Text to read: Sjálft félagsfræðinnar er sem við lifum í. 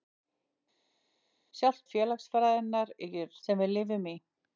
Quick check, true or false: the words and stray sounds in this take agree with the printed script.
true